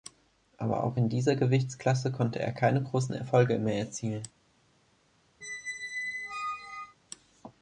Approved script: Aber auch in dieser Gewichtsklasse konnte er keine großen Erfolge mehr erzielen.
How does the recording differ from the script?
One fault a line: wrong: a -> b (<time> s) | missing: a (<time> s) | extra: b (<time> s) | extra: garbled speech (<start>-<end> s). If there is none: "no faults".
no faults